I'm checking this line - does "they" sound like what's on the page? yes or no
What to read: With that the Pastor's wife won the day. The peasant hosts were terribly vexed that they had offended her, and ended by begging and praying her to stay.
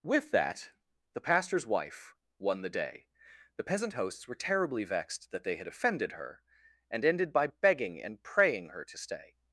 yes